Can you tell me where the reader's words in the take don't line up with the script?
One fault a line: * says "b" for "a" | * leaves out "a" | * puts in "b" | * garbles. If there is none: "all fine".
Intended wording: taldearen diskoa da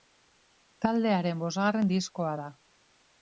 * puts in "bosgarren"